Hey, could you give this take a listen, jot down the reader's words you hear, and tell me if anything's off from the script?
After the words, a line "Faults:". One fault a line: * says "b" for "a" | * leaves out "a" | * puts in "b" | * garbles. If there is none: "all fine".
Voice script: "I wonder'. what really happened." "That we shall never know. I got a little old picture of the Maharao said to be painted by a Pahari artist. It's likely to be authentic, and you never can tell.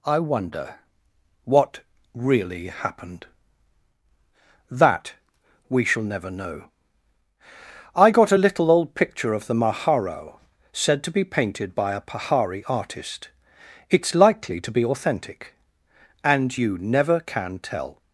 "I wonder'. what really happened." "That we shall never know. I got a little old picture of the Maharao said to be painted by a Pahari artist. It's likely to be authentic, and you never can tell.
Faults:
all fine